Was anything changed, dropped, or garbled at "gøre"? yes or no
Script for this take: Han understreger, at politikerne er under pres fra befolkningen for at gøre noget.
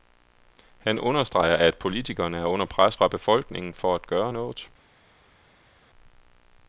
no